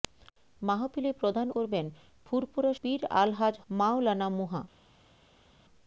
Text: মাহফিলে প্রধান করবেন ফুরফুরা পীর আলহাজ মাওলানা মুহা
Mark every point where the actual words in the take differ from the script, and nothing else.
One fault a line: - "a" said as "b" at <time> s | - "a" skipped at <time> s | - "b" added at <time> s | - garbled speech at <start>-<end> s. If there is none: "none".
none